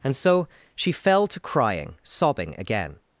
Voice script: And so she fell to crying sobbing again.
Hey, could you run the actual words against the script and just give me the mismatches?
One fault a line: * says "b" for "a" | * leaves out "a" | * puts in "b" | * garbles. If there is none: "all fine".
all fine